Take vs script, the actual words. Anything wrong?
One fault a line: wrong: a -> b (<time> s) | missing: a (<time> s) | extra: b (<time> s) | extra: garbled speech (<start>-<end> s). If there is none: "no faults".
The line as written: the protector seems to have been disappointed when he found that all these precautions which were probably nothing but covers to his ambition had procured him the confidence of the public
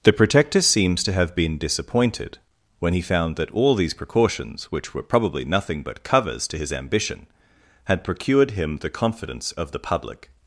no faults